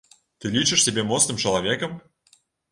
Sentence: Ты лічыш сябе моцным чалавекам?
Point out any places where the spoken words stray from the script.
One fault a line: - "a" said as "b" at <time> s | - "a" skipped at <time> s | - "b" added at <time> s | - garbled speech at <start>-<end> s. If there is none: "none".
none